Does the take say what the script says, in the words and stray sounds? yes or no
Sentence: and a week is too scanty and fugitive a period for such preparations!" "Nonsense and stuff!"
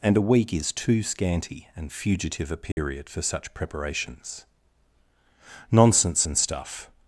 no